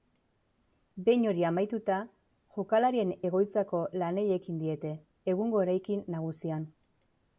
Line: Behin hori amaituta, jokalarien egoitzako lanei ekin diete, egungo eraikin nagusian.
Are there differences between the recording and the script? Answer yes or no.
no